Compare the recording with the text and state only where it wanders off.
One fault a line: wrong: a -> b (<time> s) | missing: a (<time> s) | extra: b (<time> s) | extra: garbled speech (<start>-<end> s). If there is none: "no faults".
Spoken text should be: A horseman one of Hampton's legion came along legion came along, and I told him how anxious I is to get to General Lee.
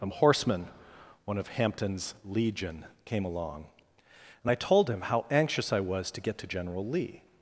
missing: legion came along (3.7 s)
wrong: is -> was (5.8 s)